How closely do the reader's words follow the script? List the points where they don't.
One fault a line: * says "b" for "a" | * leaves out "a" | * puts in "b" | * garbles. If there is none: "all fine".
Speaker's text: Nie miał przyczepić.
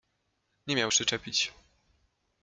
all fine